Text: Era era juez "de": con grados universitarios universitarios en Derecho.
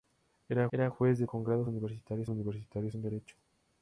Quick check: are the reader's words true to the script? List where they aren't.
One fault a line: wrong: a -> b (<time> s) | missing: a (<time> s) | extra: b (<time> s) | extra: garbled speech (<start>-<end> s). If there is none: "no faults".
no faults